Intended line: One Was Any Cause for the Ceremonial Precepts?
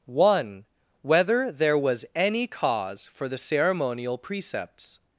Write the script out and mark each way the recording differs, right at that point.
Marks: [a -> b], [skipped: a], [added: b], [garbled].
One [added: Whether There] Was Any Cause for the Ceremonial Precepts?